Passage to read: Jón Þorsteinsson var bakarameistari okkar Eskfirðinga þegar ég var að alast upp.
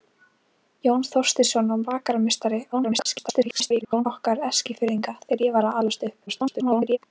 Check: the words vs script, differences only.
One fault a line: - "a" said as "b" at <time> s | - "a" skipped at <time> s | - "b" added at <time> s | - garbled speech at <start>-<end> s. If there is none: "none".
- garbled speech at 2.7-4.1 s
- garbled speech at 6.3-7.0 s